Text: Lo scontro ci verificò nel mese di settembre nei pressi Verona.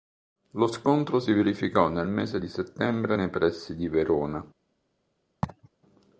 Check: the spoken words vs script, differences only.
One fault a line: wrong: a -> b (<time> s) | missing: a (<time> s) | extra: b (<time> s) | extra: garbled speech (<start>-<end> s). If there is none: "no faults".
wrong: ci -> si (1.2 s)
extra: di (3.8 s)